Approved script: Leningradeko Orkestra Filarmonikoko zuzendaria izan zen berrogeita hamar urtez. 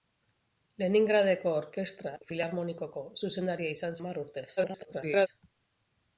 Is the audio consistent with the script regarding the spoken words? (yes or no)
no